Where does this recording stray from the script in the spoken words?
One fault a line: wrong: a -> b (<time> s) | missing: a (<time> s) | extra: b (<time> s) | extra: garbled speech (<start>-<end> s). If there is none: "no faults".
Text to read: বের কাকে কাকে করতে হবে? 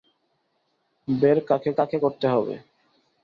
no faults